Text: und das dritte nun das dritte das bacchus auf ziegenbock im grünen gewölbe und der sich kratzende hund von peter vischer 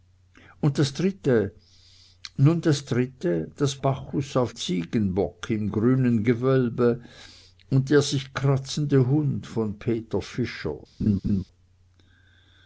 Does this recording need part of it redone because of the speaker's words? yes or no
no